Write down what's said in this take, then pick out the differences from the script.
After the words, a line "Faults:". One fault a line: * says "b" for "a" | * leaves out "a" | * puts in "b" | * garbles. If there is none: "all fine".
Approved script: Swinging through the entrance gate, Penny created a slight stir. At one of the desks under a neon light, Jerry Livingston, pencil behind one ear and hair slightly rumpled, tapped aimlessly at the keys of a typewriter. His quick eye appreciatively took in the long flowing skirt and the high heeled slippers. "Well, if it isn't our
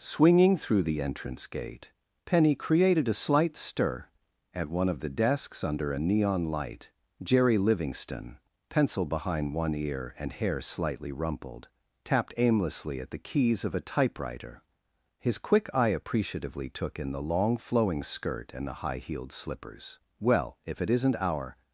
Swinging through the entrance gate, Penny created a slight stir. At one of the desks under a neon light, Jerry Livingston, pencil behind one ear and hair slightly rumpled, tapped aimlessly at the keys of a typewriter. His quick eye appreciatively took in the long flowing skirt and the high heeled slippers. "Well, if it isn't our
Faults:
all fine